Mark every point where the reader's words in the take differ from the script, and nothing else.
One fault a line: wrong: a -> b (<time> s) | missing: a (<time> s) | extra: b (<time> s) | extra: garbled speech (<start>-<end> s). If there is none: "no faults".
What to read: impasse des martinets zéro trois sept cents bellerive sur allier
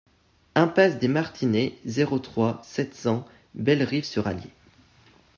no faults